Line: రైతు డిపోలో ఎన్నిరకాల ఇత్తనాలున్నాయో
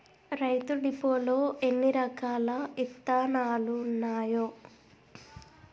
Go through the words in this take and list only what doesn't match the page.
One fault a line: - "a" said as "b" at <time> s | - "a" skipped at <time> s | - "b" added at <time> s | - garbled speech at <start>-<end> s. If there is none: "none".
none